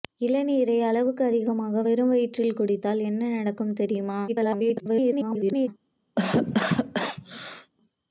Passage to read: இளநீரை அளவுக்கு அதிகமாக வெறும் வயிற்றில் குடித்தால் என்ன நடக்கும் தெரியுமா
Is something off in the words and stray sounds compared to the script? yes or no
yes